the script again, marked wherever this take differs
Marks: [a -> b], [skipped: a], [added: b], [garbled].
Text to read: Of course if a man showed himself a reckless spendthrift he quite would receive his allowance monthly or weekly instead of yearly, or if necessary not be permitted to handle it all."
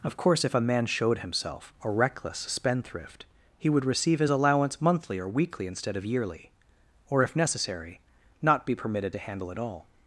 Of course if a man showed himself a reckless spendthrift he [skipped: quite] would receive his allowance monthly or weekly instead of yearly, or if necessary not be permitted to handle it all."